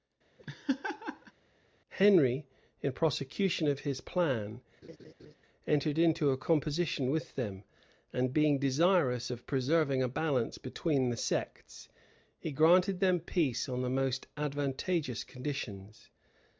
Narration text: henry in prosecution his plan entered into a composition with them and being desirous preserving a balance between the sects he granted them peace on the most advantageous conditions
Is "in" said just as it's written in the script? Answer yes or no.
yes